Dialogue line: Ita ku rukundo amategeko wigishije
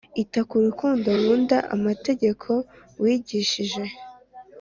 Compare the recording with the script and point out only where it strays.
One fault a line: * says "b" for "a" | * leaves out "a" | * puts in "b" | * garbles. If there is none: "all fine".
* puts in "nkunda"